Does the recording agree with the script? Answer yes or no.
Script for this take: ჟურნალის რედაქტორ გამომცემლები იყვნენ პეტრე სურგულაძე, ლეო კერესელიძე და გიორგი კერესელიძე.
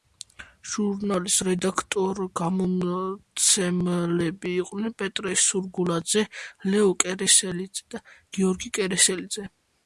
yes